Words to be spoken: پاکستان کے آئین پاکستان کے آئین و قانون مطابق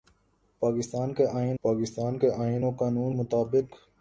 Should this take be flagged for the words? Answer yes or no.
no